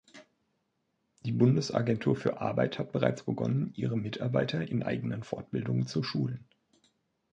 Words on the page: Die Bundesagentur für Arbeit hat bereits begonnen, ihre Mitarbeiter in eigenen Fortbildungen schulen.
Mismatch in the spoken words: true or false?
true